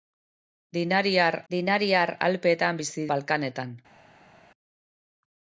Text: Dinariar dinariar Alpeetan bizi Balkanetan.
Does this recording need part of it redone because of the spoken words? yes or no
no